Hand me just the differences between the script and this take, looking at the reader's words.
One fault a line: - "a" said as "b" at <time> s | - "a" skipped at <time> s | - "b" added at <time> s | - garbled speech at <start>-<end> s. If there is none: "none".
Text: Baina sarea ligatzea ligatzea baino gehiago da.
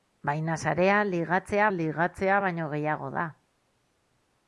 none